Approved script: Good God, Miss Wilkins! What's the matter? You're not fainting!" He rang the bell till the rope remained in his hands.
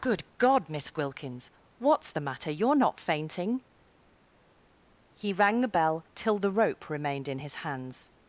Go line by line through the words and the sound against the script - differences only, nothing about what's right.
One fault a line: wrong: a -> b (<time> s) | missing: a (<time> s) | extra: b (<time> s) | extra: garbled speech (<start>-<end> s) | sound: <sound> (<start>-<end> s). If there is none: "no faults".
no faults